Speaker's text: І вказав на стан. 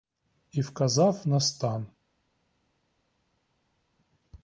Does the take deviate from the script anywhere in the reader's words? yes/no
no